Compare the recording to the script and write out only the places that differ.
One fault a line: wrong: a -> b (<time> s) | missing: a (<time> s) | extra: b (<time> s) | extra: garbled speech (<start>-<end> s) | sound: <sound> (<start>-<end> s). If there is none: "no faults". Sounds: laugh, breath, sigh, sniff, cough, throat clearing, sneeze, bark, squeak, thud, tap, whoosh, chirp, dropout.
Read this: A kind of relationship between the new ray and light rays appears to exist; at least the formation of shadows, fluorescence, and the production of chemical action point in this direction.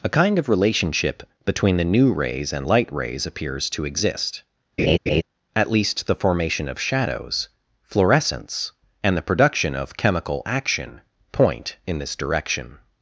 wrong: ray -> rays (2.1 s)
sound: laugh (4.8-5.2 s)